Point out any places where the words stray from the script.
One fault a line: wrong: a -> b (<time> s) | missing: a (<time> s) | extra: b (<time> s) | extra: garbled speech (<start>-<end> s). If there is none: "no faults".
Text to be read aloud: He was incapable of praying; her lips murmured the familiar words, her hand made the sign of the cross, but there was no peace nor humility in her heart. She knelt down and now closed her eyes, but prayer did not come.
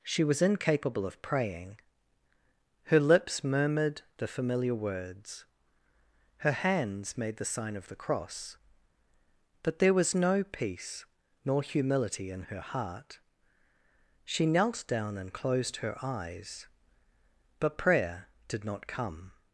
wrong: He -> She (0.0 s)
wrong: hand -> hands (6.5 s)
missing: now (15.3 s)